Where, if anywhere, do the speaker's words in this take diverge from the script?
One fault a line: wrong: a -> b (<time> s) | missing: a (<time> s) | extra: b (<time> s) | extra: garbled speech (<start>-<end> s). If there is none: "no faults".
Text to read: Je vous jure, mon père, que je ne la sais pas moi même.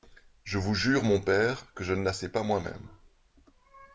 no faults